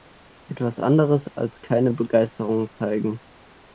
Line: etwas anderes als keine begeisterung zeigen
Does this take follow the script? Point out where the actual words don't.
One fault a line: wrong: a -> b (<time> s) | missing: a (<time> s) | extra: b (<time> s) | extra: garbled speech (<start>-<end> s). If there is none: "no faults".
no faults